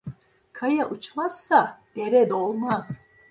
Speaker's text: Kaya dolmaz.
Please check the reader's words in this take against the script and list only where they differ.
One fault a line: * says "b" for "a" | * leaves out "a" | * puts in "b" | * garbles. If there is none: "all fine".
* puts in "uçmazsa dere"